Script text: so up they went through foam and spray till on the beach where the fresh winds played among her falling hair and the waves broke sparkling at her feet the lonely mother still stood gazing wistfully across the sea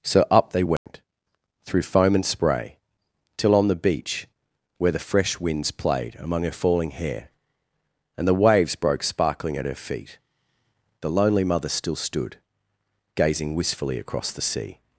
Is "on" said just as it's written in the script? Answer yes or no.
yes